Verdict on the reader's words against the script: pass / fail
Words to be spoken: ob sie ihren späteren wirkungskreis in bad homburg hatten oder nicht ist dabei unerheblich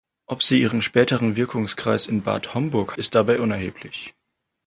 fail